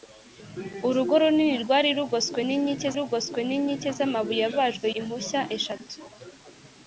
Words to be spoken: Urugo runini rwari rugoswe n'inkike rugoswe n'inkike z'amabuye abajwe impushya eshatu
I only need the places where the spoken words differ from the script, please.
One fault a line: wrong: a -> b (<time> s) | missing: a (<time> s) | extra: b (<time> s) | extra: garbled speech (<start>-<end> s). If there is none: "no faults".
no faults